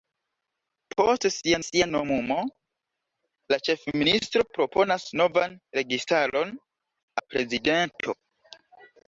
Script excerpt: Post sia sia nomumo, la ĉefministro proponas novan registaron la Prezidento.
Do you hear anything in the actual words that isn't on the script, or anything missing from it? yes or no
no